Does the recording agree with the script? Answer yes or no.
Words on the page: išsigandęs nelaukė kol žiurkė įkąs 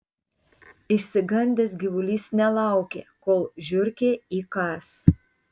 no